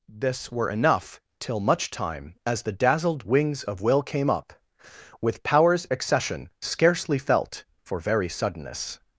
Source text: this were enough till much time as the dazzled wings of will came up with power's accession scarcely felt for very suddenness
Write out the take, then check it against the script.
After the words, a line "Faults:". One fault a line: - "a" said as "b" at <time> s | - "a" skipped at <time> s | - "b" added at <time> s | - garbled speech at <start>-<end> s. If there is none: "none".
this were enough till much time as the dazzled wings of will came up with power's accession scarcely felt for very suddenness
Faults:
none